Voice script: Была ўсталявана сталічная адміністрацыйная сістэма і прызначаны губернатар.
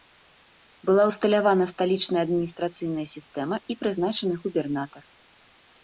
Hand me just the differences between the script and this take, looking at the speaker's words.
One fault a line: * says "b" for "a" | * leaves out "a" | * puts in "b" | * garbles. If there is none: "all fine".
all fine